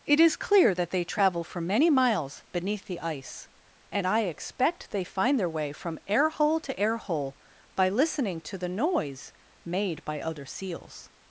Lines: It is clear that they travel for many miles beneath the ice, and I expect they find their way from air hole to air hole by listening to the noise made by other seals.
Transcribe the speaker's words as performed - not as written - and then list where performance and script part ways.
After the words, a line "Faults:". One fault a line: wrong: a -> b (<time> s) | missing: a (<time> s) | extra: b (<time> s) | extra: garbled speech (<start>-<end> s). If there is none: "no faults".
It is clear that they travel for many miles beneath the ice, and I expect they find their way from air hole to air hole by listening to the noise made by other seals.
Faults:
no faults